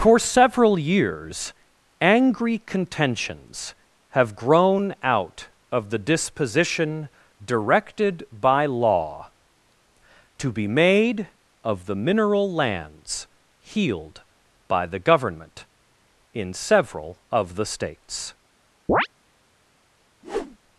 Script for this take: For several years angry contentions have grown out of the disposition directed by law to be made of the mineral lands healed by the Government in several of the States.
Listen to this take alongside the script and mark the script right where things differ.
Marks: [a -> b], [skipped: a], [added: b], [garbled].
For several years angry contentions have grown out of the disposition directed by law to be made of the mineral lands healed by the Government in several of the States.